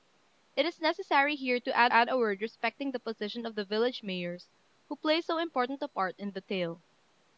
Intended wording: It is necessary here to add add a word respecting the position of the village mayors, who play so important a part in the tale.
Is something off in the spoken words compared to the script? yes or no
no